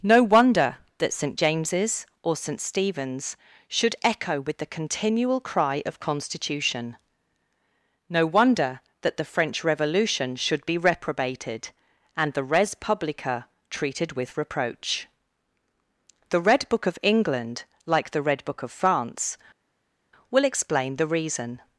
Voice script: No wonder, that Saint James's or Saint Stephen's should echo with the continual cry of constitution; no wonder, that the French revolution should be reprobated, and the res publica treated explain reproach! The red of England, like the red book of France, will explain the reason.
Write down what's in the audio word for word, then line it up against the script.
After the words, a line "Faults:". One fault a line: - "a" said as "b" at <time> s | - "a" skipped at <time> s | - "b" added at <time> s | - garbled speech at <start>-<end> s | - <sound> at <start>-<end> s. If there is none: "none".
No wonder, that Saint James's or Saint Stephen's should echo with the continual cry of constitution; no wonder, that the French revolution should be reprobated, and the res publica treated with reproach! The red book of England, like the red book of France, will explain the reason.
Faults:
- "explain" said as "with" at 14.1 s
- "book" added at 16.7 s